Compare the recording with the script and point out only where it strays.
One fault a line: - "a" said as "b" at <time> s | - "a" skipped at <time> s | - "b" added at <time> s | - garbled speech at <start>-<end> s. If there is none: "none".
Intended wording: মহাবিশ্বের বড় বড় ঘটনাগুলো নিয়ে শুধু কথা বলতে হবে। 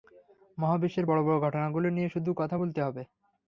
none